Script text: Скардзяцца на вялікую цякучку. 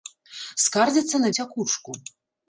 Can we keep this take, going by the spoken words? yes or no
no